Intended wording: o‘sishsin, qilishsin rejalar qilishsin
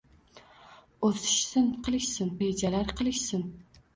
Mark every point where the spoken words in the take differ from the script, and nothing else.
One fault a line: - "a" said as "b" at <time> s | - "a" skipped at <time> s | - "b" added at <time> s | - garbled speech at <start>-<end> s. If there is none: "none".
none